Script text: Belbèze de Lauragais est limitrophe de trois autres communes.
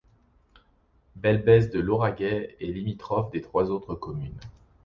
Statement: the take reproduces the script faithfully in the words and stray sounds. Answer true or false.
true